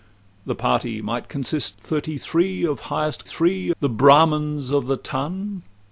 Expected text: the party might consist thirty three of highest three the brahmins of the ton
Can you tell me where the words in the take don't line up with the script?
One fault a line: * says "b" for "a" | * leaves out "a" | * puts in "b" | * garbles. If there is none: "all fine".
all fine